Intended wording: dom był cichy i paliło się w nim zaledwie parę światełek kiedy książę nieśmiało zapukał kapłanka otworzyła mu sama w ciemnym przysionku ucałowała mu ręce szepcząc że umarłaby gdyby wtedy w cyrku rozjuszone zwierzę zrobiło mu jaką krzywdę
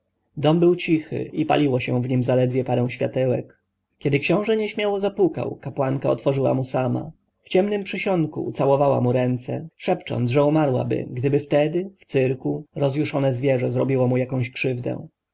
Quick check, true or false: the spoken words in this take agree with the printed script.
true